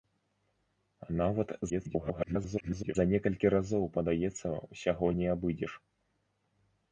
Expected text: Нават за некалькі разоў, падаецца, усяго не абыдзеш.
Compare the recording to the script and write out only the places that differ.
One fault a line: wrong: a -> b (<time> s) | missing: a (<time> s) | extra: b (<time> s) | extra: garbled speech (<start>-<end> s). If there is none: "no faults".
extra: garbled speech (1.7-3.0 s)